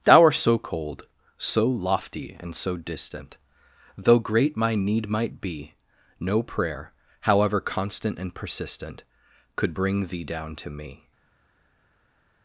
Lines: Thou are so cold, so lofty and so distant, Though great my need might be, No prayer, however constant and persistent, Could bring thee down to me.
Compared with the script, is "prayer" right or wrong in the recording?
right